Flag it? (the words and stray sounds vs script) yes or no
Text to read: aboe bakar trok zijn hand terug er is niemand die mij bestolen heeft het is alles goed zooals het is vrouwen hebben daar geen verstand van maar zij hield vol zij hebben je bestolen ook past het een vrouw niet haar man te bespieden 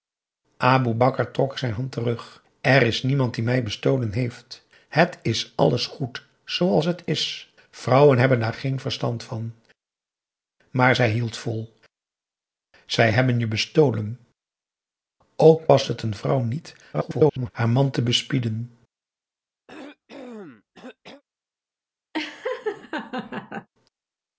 yes